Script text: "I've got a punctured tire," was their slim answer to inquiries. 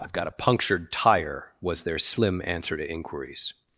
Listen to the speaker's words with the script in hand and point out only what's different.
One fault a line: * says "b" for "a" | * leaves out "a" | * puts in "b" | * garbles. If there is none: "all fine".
all fine